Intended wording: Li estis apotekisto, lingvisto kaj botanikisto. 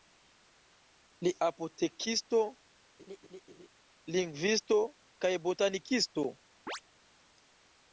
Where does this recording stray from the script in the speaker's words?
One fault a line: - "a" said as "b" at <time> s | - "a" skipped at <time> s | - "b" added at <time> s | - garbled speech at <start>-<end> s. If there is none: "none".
- "estis" skipped at 1.3 s